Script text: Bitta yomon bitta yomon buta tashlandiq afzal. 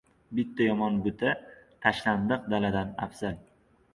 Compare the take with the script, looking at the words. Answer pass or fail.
fail